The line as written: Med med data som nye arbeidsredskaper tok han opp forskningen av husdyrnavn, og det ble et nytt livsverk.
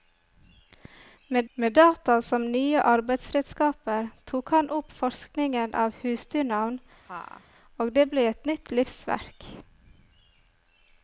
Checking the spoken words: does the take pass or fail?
pass